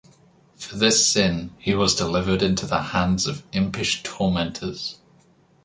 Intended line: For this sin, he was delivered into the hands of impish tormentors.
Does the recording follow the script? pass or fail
pass